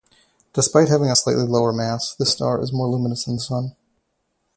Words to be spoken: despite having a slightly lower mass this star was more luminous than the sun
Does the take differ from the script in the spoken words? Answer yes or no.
yes